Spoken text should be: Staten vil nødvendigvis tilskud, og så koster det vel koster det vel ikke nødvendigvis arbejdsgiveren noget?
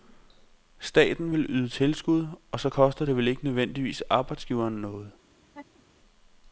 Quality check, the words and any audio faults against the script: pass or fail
fail